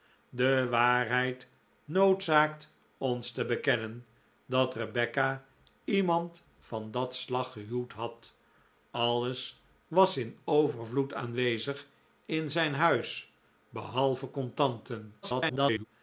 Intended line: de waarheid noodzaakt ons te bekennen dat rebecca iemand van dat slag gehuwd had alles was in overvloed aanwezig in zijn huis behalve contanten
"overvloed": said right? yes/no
yes